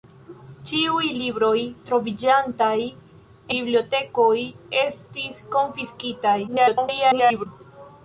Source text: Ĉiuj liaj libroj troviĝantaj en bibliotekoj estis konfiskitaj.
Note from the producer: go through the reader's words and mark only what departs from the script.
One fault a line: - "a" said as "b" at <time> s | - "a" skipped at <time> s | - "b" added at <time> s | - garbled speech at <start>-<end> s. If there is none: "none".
- "liaj" skipped at 1.1 s
- "en" skipped at 2.7 s
- garbled speech at 6.5-7.5 s